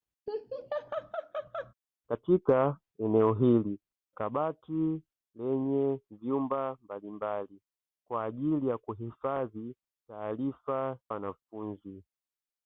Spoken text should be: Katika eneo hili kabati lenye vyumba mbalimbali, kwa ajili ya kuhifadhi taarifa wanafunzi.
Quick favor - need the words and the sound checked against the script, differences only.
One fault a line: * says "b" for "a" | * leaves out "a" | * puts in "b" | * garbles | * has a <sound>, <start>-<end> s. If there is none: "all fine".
* has a laugh, 0.3-1.7 s